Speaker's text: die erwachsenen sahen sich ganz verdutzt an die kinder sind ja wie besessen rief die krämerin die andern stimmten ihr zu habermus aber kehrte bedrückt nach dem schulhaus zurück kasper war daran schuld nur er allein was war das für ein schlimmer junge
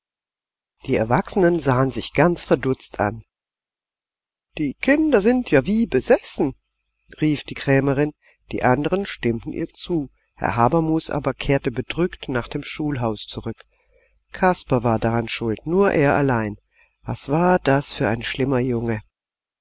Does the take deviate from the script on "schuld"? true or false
false